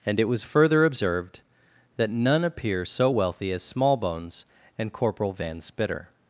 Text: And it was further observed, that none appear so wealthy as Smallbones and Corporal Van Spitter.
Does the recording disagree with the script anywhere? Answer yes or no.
no